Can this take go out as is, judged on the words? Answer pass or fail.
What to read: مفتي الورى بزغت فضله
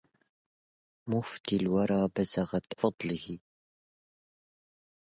pass